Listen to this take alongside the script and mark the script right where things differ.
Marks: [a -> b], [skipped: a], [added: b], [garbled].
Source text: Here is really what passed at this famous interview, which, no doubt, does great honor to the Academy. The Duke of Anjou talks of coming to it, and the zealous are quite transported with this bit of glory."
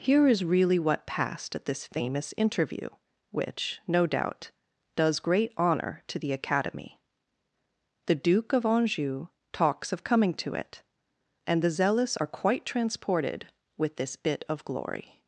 Here is really what passed at this famous interview, which, no doubt, does great honor to the Academy. The Duke of Anjou talks of coming to it, and the zealous are quite transported with this bit of glory."